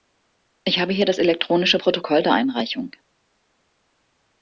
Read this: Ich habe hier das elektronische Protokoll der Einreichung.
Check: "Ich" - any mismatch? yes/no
no